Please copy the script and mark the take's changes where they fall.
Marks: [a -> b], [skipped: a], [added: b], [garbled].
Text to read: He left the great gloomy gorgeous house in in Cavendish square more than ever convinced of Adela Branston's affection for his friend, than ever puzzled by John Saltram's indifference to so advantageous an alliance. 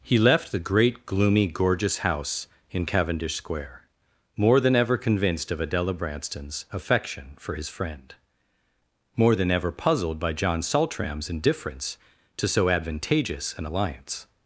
He left the great gloomy gorgeous house in [skipped: in] Cavendish square more than ever convinced of Adela Branston's affection for his friend, [added: more] than ever puzzled by John Saltram's indifference to so advantageous an alliance.